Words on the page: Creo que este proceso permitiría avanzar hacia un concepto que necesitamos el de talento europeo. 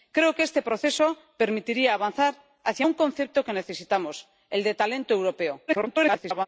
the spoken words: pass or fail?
fail